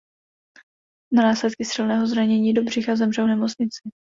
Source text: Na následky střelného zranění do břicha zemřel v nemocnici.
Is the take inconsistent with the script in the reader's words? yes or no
no